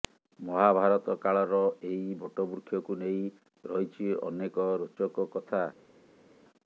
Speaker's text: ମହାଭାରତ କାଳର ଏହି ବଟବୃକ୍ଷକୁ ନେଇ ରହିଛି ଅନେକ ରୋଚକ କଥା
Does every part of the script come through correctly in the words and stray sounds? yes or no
yes